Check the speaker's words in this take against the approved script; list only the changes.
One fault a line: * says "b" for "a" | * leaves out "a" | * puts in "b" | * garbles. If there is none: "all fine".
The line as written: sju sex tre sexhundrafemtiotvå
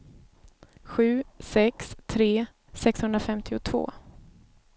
all fine